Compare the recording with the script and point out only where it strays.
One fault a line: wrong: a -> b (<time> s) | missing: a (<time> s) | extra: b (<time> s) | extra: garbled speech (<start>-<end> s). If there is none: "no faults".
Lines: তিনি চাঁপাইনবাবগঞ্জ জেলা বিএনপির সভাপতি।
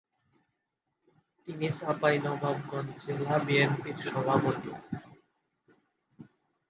no faults